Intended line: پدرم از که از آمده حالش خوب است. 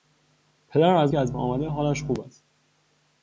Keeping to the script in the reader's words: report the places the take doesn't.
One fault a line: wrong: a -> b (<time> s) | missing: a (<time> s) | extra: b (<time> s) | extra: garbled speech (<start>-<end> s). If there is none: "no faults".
no faults